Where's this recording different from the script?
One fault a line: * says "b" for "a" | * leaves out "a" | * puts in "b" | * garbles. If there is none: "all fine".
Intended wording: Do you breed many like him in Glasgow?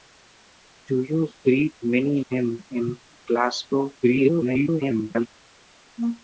* leaves out "like"
* garbles